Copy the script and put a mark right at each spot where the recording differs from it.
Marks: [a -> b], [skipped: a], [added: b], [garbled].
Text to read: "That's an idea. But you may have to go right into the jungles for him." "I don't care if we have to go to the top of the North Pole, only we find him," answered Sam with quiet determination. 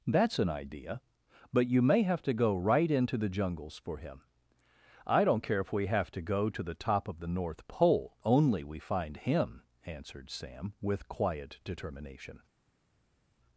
"That's an idea. But you may have to go right into the jungles for him." "I don't care if we have to go to the top of the North Pole, only we find him," answered Sam with quiet determination.